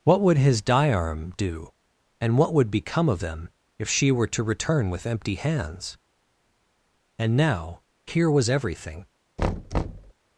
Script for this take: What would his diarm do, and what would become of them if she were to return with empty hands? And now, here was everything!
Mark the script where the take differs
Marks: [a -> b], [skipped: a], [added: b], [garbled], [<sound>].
What would his diarm do, and what would become of them if she were to return with empty hands? And now, here was everything! [thud]